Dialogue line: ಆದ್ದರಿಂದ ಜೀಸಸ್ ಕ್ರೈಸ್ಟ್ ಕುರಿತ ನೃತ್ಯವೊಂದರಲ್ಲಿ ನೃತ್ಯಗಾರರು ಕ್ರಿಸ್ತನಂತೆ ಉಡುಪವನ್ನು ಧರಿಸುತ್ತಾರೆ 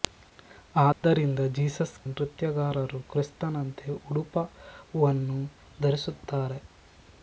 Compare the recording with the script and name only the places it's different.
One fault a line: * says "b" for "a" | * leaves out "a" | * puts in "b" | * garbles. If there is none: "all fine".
* leaves out "ಕ್ರೈಸ್ಟ್ ಕುರಿತ ನೃತ್ಯವೊಂದರಲ್ಲಿ"